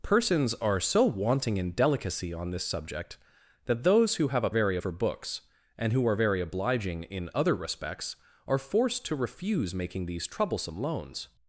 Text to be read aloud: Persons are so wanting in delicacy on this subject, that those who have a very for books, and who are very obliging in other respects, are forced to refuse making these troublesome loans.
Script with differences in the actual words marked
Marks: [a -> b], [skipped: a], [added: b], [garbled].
Persons are so wanting in delicacy on this subject, that those who have a very for books, and who are very obliging in other respects, are forced to refuse making these troublesome loans.